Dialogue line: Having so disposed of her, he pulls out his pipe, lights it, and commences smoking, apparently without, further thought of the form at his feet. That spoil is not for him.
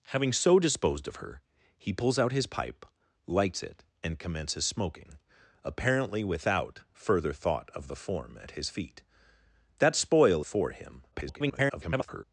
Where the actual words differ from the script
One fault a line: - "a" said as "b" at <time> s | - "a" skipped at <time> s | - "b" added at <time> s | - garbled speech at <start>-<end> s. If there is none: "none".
- "is not" skipped at 10.4 s
- garbled speech at 11.1-12.2 s